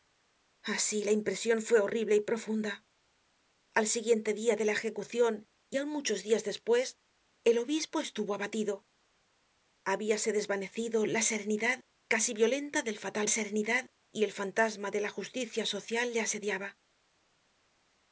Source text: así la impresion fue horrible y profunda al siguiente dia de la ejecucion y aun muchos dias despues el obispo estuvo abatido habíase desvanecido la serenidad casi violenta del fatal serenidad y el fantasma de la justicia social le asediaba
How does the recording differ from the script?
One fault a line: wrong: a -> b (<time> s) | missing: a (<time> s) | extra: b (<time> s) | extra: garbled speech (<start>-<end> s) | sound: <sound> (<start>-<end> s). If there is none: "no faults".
no faults